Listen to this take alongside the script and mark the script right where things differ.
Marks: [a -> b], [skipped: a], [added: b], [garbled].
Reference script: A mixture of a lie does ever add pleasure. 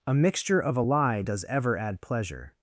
A mixture of a lie does ever add pleasure.